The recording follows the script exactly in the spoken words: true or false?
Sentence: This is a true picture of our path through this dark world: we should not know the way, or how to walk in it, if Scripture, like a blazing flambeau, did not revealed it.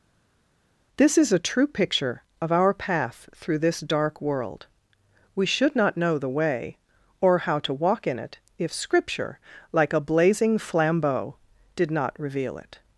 false